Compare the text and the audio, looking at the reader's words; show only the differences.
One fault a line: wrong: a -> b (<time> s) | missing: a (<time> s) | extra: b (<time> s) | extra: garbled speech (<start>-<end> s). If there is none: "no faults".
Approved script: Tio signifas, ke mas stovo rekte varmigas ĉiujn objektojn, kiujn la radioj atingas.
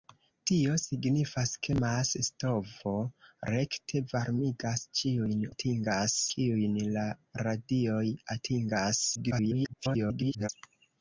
wrong: objektojn -> atingas (5.5 s)
extra: garbled speech (9.2-10.5 s)